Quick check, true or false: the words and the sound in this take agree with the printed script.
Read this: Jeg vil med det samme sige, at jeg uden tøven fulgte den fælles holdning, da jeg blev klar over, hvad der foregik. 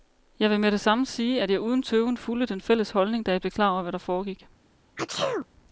false